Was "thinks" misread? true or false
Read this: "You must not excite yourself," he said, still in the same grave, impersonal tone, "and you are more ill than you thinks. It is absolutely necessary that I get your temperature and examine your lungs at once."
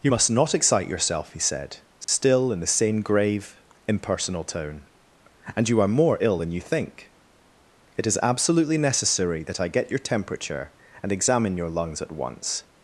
true